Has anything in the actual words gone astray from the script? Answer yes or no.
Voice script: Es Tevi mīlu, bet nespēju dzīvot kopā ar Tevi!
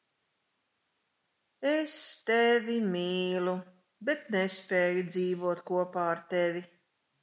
no